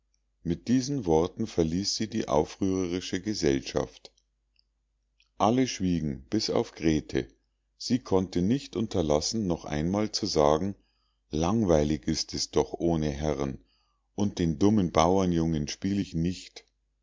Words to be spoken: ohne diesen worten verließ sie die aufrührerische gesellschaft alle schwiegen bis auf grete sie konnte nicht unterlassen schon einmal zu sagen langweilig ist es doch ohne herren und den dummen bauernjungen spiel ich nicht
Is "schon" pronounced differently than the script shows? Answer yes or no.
yes